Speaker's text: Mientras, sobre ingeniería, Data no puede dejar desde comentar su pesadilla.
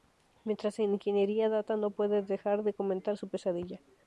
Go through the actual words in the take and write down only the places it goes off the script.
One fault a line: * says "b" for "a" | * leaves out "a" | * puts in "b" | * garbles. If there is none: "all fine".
* says "en" for "sobre"
* says "de" for "desde"